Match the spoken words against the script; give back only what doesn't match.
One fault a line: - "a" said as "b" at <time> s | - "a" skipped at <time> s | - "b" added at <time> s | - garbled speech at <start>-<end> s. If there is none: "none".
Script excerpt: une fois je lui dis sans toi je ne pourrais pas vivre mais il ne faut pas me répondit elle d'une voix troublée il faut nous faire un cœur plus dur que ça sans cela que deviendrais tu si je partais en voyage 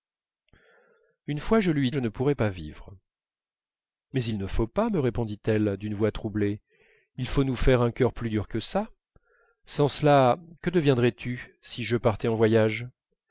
- "dis sans toi" skipped at 1.9 s